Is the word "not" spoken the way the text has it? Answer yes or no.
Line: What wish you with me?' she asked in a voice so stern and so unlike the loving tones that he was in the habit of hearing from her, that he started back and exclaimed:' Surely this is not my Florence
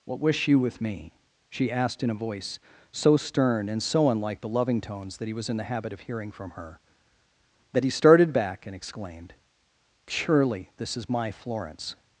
no